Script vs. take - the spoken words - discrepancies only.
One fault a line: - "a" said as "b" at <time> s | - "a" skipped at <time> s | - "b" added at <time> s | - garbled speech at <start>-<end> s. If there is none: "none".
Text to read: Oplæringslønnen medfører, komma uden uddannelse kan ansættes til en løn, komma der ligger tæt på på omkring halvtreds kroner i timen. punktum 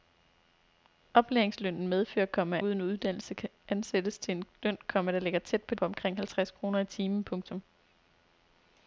none